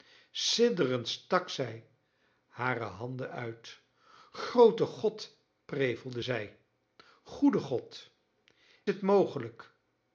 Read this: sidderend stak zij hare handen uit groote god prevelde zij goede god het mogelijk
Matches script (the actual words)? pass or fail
pass